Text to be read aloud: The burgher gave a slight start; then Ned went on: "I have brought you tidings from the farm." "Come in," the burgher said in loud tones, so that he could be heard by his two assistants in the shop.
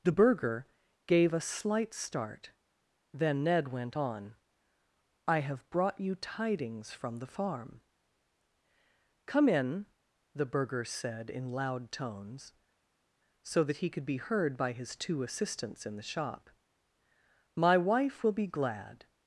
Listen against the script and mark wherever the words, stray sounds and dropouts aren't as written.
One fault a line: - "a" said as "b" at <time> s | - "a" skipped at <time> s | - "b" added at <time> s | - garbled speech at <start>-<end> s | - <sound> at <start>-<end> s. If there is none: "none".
- "My wife will be glad" added at 17.6 s